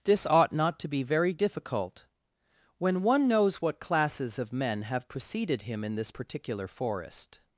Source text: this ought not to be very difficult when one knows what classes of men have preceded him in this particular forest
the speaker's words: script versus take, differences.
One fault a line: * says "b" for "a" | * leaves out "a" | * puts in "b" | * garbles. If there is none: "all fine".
all fine